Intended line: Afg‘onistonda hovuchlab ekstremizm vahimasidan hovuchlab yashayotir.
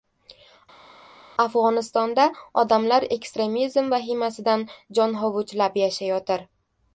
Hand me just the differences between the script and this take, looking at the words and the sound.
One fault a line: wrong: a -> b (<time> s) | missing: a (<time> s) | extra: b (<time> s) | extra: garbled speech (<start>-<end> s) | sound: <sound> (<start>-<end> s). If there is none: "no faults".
wrong: hovuchlab -> odamlar (2.6 s)
extra: jon (5.0 s)